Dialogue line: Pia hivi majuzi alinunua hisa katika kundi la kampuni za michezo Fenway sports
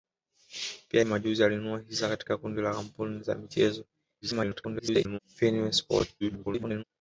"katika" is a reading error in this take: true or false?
false